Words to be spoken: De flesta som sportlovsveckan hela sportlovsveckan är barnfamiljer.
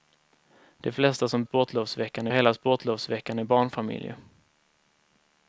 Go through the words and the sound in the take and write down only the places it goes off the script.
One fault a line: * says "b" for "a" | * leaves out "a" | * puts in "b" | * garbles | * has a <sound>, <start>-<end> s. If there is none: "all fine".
all fine